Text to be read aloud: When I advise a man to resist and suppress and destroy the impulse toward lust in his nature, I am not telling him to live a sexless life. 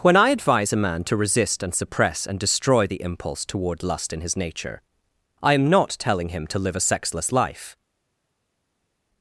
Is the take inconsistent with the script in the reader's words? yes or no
no